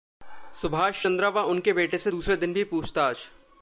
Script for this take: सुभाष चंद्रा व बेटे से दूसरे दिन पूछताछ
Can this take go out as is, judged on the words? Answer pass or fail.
fail